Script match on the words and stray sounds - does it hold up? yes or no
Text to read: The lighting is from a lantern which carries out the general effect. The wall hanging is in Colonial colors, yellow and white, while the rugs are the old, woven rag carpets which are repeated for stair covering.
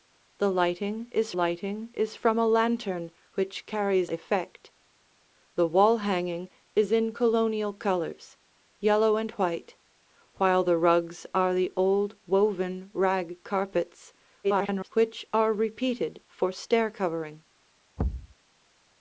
no